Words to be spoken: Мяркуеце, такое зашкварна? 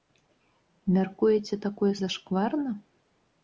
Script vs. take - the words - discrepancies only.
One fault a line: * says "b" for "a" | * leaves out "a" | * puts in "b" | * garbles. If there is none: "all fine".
all fine